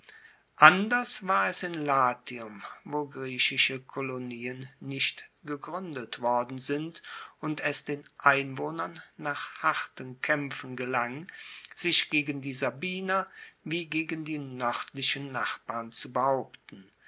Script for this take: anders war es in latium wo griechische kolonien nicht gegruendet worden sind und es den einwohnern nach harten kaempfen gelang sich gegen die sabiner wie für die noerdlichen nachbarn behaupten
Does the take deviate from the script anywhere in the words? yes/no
yes